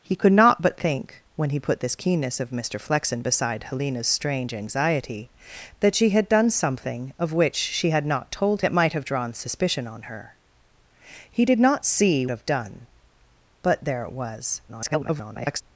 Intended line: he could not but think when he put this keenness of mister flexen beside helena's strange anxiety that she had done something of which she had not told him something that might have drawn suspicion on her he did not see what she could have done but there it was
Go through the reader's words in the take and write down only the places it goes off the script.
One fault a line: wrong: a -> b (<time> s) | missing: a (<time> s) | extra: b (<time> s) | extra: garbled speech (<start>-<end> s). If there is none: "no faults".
missing: him something (8.6 s)
missing: what she could (12.3 s)
extra: garbled speech (14.7-15.6 s)